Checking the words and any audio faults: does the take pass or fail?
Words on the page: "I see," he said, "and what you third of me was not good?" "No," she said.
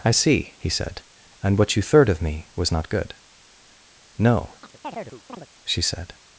fail